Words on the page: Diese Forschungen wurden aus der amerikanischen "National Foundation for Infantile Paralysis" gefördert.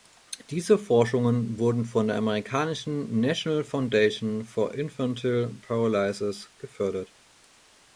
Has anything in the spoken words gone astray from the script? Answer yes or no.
yes